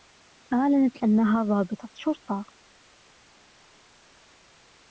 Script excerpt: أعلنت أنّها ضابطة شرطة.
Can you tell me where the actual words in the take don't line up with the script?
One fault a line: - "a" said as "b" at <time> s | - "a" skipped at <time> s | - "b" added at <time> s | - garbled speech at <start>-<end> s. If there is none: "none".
none